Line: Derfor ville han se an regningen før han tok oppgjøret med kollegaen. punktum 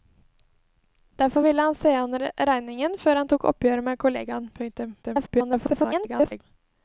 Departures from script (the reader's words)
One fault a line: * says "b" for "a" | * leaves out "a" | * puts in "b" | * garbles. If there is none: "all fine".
* garbles